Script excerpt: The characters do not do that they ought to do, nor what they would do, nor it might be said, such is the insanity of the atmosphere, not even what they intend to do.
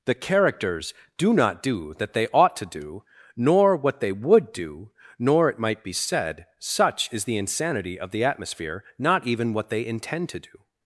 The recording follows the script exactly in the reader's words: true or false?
true